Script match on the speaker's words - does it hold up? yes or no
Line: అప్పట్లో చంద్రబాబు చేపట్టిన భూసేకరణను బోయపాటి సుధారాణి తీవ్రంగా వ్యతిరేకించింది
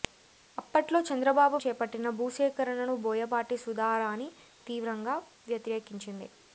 yes